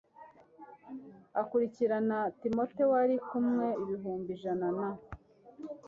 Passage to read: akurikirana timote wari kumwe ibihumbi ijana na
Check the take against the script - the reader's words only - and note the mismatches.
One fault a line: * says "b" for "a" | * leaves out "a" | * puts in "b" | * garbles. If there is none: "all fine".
all fine